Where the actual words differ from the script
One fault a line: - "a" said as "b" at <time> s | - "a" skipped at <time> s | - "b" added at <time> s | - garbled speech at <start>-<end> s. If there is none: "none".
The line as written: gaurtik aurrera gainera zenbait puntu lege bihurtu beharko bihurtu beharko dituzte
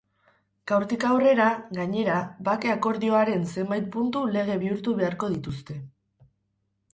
- "bake akordioaren" added at 2.5 s
- "bihurtu beharko" skipped at 5.3 s